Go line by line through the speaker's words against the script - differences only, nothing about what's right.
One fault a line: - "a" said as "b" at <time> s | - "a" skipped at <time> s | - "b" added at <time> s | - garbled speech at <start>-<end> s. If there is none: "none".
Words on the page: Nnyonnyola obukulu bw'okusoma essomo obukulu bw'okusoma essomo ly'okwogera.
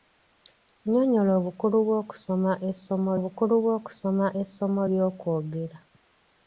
none